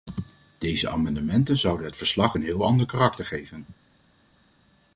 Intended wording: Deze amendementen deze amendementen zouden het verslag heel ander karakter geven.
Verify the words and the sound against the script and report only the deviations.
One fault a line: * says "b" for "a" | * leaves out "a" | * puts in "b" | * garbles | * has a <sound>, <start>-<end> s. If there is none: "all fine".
* leaves out "deze amendementen"
* puts in "een"